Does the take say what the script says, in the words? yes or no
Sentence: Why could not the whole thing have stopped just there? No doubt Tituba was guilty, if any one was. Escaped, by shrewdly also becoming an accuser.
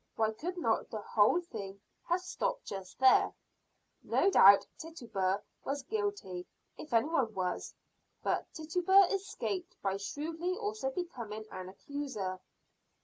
no